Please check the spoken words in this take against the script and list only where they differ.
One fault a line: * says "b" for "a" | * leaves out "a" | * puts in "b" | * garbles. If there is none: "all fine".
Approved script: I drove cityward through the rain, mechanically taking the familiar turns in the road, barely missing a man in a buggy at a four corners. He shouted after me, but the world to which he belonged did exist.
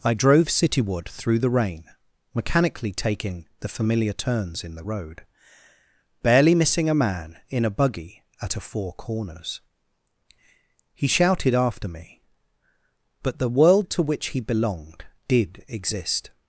all fine